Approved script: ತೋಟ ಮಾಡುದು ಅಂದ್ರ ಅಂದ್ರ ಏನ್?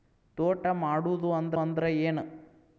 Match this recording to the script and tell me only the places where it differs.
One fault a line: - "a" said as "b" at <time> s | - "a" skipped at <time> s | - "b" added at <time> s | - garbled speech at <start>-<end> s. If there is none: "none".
none